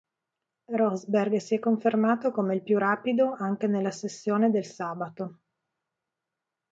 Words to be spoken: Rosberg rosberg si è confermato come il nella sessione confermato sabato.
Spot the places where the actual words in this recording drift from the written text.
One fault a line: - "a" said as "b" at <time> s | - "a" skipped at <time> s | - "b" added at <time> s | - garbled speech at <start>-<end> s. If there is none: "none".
- "rosberg" skipped at 1.4 s
- "più rapido anche" added at 2.6 s
- "confermato" said as "del" at 4.5 s